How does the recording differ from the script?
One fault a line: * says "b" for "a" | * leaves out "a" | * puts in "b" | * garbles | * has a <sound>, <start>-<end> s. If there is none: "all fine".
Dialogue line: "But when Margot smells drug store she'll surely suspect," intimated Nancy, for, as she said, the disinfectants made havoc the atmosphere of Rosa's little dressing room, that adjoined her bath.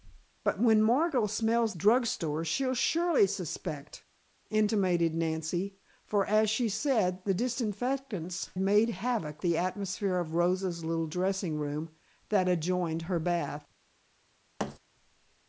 * has a thud, 14.6-14.8 s